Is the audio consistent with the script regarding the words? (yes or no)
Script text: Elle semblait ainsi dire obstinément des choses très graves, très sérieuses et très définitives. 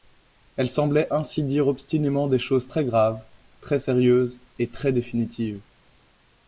yes